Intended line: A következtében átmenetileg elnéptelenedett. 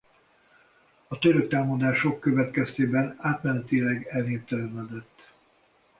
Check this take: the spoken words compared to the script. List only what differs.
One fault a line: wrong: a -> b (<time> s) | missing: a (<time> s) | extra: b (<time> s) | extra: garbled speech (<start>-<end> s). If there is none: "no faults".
extra: török támadások (1.2 s)